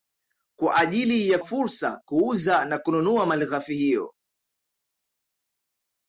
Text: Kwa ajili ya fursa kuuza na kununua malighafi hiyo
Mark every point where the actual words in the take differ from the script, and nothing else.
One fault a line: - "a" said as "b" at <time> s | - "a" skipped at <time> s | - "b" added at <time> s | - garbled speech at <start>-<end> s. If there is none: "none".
none